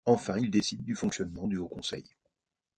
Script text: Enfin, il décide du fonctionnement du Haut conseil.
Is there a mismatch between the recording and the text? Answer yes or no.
no